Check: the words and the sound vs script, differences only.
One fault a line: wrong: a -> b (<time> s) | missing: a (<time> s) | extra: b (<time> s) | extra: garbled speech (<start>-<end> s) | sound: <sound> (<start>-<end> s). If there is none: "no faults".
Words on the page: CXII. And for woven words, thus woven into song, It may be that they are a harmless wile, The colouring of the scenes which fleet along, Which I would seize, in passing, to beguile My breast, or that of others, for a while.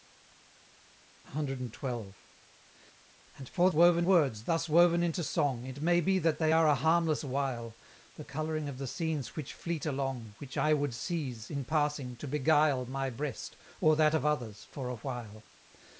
no faults